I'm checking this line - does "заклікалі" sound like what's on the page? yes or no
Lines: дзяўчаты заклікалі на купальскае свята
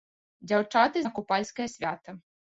no